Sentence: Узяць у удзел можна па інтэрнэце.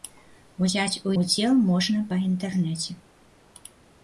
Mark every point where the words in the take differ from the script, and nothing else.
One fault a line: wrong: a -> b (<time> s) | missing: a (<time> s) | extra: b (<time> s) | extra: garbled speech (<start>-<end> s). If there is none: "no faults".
no faults